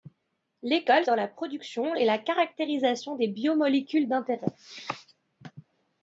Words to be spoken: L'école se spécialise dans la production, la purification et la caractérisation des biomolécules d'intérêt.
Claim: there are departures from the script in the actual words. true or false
true